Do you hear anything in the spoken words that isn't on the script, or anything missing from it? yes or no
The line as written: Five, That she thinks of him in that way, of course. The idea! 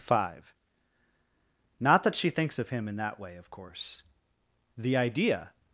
yes